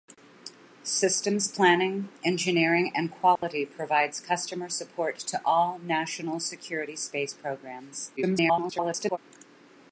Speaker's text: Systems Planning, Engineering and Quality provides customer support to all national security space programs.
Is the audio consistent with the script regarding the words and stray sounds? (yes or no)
no